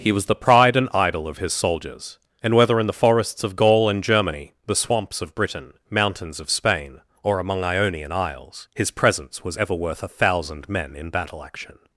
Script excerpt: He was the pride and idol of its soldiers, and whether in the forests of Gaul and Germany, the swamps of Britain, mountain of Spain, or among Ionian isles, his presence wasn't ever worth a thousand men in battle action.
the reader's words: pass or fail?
fail